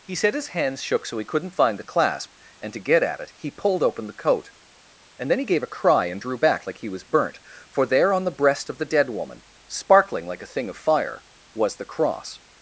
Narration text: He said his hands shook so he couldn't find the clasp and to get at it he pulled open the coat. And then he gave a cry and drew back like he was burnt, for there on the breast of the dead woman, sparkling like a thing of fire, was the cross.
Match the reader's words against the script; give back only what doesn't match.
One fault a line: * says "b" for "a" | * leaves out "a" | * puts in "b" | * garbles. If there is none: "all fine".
all fine